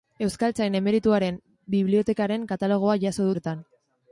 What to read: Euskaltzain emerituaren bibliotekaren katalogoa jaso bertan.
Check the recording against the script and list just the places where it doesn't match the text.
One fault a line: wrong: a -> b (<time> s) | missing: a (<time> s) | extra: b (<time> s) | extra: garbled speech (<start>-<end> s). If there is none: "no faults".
no faults